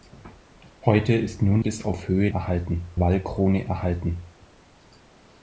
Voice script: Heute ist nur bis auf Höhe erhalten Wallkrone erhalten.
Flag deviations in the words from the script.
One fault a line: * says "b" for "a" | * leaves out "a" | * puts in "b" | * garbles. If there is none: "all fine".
all fine